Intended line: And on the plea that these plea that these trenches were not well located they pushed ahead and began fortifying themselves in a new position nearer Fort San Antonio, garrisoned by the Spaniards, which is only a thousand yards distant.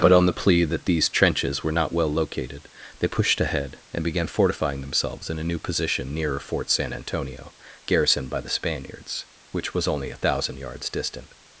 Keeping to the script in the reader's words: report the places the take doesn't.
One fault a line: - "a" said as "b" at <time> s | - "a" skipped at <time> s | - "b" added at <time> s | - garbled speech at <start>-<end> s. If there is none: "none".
- "And" said as "But" at 0.0 s
- "plea that these" skipped at 1.1 s
- "is" said as "was" at 9.8 s